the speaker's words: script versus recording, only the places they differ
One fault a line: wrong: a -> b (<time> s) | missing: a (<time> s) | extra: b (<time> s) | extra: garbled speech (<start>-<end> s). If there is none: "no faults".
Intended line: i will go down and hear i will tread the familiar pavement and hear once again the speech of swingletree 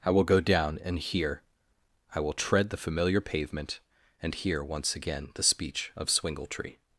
no faults